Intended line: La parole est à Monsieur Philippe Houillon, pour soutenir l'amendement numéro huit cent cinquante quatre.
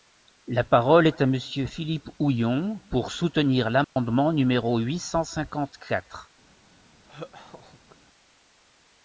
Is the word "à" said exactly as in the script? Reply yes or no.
yes